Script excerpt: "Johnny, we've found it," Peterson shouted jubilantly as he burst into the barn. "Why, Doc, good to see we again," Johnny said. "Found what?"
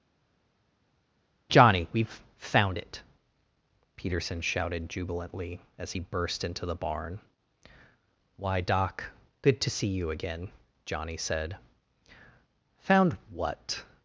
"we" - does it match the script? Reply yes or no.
no